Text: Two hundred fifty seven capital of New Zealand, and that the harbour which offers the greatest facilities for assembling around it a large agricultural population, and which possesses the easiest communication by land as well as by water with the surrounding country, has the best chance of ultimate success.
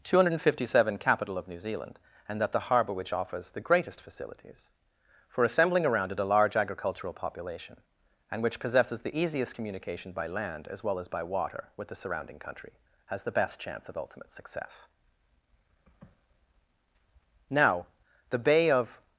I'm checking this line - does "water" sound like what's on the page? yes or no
yes